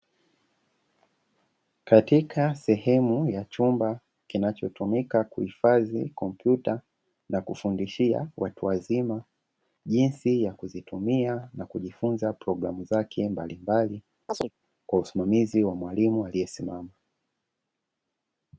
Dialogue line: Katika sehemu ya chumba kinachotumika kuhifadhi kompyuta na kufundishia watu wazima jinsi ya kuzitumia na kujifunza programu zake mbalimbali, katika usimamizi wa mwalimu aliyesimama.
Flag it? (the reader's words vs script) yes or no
yes